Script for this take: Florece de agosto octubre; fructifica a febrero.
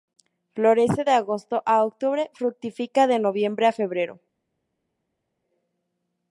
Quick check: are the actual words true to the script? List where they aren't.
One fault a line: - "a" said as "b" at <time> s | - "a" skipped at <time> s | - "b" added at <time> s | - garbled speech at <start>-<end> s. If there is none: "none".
- "a" added at 1.6 s
- "de noviembre" added at 3.1 s